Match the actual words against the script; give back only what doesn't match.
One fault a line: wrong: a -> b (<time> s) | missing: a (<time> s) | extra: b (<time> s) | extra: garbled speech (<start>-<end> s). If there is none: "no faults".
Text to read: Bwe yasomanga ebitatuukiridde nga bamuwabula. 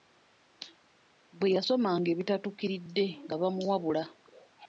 no faults